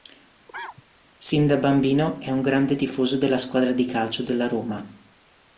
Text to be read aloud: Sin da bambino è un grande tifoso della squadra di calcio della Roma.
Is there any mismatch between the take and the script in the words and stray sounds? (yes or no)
yes